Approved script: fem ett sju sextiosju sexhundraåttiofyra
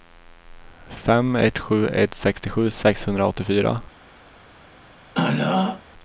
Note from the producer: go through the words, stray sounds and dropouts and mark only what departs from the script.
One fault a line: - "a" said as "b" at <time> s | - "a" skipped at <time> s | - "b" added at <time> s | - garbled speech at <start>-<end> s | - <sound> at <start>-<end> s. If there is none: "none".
- "ett" added at 1.9 s
- throat clearing at 5.1-5.8 s